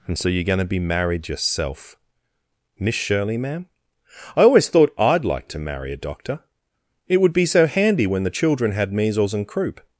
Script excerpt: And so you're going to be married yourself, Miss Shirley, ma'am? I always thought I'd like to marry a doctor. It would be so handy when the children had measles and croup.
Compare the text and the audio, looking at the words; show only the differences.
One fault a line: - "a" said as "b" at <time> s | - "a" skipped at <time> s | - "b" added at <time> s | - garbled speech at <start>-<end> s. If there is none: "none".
none